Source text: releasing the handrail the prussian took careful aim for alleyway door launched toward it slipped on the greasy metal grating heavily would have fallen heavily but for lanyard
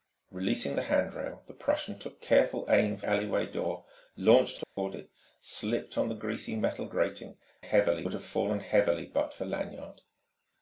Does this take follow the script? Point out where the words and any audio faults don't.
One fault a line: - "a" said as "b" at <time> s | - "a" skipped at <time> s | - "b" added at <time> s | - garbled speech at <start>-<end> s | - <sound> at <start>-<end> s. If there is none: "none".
- dropout at 4.6-4.8 s